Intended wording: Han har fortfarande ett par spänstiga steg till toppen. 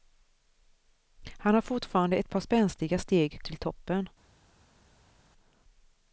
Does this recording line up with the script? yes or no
yes